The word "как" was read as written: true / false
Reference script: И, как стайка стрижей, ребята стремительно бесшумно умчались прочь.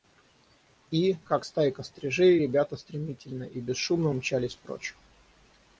true